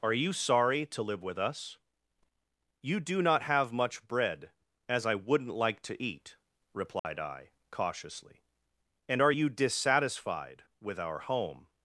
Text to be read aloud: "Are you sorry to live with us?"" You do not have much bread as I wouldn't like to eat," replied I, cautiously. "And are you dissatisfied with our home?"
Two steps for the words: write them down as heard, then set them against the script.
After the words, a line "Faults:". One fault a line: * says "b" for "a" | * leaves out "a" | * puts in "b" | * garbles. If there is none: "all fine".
"Are you sorry to live with us?"" You do not have much bread as I wouldn't like to eat," replied I, cautiously. "And are you dissatisfied with our home?"
Faults:
all fine